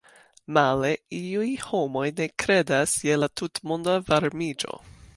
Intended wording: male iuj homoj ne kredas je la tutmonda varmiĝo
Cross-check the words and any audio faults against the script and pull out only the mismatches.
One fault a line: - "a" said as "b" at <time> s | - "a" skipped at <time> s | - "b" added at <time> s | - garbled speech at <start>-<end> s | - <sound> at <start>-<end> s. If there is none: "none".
none